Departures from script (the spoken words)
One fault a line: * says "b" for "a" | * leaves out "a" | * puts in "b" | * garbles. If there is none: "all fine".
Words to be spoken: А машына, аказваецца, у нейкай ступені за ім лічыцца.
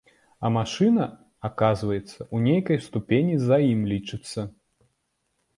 all fine